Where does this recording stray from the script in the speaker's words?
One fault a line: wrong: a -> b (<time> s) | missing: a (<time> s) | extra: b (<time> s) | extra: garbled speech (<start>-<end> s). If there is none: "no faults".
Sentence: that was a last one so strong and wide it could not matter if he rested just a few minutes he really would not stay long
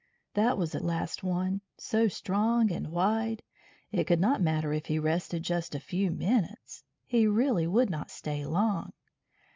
no faults